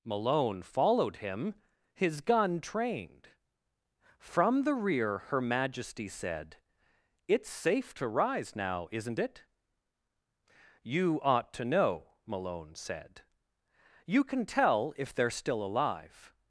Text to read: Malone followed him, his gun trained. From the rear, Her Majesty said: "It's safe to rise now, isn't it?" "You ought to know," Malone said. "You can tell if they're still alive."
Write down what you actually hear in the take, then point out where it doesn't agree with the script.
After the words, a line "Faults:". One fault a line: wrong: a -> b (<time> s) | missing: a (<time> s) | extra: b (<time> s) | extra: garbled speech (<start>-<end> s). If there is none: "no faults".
Malone followed him, his gun trained. From the rear, Her Majesty said: "It's safe to rise now, isn't it?" "You ought to know," Malone said. "You can tell if they're still alive."
Faults:
no faults